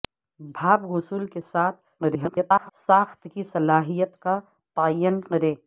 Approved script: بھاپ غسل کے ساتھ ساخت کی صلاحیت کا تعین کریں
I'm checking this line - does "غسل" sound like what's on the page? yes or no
yes